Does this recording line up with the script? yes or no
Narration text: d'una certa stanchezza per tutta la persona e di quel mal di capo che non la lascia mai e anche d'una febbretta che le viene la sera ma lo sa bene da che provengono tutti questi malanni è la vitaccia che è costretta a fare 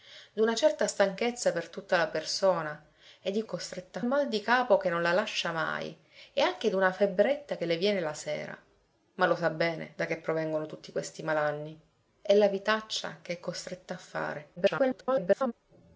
no